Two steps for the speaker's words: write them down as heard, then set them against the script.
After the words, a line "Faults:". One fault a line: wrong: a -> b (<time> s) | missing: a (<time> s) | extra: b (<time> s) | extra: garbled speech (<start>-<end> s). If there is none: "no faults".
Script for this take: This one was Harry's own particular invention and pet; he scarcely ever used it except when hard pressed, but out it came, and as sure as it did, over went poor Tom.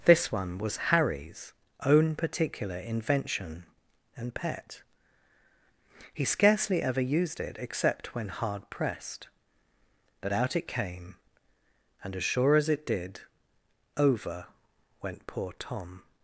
This one was Harry's own particular invention and pet; he scarcely ever used it except when hard pressed, but out it came, and as sure as it did, over went poor Tom.
Faults:
no faults